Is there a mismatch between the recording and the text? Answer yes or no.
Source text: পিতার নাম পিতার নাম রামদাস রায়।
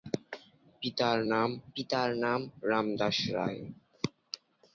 no